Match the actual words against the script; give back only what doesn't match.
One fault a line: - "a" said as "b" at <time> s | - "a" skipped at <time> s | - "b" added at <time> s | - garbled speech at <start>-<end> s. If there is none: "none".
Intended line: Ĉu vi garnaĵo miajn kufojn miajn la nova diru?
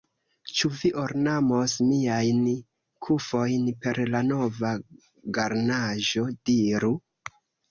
- "garnaĵo" said as "ornamos" at 1.0 s
- "miajn" said as "per" at 3.9 s
- "garnaĵo" added at 5.4 s